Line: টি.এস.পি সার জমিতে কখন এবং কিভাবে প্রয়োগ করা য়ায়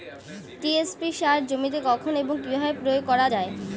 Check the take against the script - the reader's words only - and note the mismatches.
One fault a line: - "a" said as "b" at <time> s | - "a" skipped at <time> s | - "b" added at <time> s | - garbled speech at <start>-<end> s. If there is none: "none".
none